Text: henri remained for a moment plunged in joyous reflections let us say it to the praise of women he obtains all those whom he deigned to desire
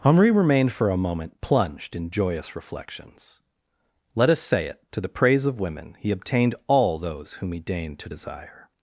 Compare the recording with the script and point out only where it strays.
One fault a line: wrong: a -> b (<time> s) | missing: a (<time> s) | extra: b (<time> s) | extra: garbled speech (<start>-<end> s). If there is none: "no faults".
wrong: obtains -> obtained (6.1 s)